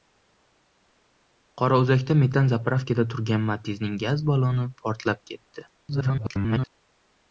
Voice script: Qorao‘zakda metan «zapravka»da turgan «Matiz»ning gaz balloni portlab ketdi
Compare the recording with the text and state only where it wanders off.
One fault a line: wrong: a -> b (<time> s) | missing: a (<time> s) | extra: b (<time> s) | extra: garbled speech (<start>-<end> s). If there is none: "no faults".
extra: garbled speech (5.8-6.7 s)